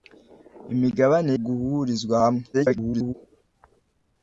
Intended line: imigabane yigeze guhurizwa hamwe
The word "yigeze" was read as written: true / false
false